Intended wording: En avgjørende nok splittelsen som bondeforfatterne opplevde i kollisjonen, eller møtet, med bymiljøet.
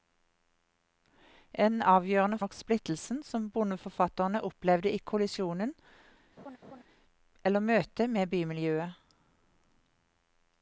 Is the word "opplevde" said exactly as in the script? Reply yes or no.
yes